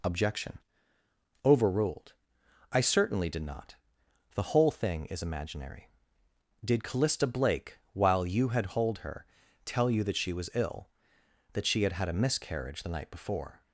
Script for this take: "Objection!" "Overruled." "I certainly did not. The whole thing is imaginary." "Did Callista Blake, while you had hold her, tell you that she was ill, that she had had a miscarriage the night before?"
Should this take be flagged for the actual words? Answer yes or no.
no